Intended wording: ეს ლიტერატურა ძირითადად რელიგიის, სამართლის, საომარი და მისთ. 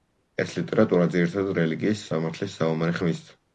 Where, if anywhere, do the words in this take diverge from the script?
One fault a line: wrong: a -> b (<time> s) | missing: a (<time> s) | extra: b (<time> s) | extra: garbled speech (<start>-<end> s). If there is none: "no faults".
no faults